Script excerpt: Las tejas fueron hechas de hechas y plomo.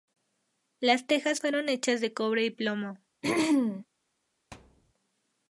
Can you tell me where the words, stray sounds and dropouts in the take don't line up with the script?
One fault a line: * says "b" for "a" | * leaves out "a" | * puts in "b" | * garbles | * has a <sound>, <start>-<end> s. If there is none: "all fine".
* says "cobre" for "hechas"
* has a throat clearing, 3.2-3.9 s
* has a thud, 4.5-4.9 s